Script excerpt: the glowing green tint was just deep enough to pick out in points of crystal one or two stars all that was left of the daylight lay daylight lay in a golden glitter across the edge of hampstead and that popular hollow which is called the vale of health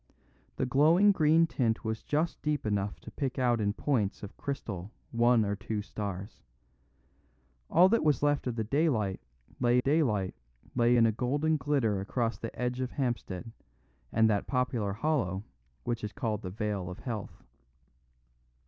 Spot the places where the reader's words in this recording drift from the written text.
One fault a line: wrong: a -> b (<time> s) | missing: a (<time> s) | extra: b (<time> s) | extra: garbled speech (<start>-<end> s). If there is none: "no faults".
no faults